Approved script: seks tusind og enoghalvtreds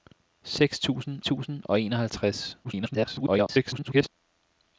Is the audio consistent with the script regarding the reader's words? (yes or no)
no